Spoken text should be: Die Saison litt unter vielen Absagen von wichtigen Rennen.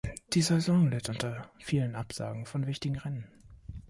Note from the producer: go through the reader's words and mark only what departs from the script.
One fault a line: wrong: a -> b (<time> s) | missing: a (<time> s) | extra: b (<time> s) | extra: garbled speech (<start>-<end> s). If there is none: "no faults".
no faults